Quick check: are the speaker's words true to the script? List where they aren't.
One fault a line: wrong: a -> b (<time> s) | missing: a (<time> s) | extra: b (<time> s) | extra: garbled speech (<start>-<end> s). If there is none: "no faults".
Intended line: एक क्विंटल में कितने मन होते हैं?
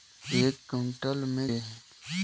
missing: कितने मन होते (1.5 s)